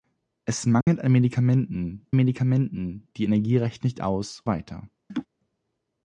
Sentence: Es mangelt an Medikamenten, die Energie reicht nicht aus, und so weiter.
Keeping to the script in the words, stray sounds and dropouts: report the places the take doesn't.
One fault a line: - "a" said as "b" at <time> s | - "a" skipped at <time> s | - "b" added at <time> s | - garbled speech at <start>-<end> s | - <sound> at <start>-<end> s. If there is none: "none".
- dropout at 0.8-0.9 s
- "Medikamenten" added at 2.2 s
- "und so" skipped at 4.4 s
- laugh at 5.1-5.3 s